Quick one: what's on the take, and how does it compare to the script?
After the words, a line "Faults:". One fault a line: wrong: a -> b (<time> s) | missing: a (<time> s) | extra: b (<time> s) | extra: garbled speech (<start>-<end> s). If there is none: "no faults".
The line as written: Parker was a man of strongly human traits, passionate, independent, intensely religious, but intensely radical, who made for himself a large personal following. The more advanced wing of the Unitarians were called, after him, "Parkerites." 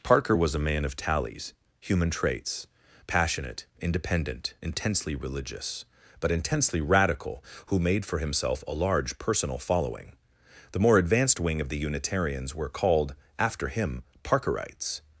Parker was a man of tallies human traits, passionate, independent, intensely religious, but intensely radical, who made for himself a large personal following. The more advanced wing of the Unitarians were called, after him, "Parkerites."
Faults:
wrong: strongly -> tallies (0.9 s)